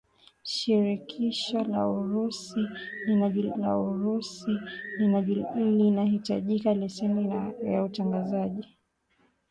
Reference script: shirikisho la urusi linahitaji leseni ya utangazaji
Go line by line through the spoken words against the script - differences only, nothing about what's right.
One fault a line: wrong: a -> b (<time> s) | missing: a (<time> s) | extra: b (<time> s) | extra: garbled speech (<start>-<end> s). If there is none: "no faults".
extra: la urusi (3.5 s)